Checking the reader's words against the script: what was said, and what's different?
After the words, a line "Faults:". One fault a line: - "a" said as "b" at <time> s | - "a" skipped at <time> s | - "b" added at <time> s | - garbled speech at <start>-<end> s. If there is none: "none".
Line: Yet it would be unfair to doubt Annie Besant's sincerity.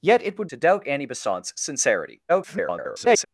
Yet it would to doubt Annie Besant's sincerity. [garbled]
Faults:
- "be unfair" skipped at 0.5 s
- garbled speech at 2.3-3.3 s